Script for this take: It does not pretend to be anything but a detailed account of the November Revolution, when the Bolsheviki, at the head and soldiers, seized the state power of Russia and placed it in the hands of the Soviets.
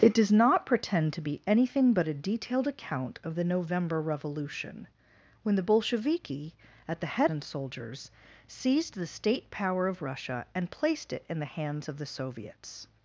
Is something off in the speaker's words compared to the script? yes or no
no